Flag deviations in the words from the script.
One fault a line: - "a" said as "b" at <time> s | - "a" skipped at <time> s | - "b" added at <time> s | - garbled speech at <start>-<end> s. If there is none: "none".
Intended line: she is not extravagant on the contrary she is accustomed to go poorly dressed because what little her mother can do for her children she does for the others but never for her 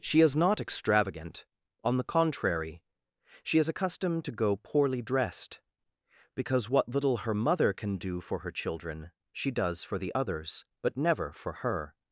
none